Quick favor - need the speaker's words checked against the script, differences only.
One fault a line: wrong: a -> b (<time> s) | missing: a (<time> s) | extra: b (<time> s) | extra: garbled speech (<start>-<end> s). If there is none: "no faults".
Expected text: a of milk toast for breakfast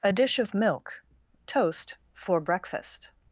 extra: dish (0.1 s)